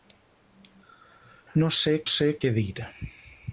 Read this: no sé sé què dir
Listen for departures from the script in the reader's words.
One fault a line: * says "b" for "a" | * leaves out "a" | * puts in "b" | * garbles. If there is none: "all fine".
all fine